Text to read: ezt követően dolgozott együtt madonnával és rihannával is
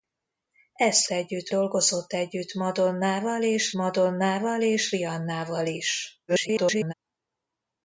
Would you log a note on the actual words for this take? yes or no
yes